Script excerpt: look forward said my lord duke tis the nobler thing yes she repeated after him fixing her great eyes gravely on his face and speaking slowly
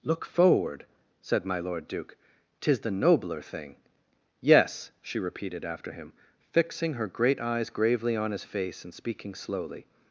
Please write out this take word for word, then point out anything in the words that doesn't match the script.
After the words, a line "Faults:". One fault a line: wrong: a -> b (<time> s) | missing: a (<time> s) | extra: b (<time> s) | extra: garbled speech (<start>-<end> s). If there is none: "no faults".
look forward said my lord duke tis the nobler thing yes she repeated after him fixing her great eyes gravely on his face and speaking slowly
Faults:
no faults